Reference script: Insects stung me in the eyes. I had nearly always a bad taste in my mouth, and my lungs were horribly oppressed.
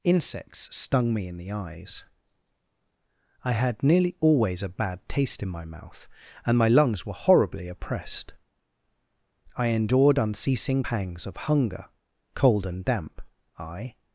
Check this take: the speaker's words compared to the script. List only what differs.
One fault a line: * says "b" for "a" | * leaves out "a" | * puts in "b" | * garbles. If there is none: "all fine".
* puts in "I endured unceasing pangs of hunger cold and damp I"